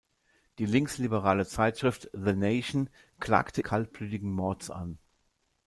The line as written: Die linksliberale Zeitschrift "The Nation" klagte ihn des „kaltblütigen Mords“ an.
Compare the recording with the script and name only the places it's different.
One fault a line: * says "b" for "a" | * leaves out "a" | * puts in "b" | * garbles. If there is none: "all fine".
* leaves out "ihn des"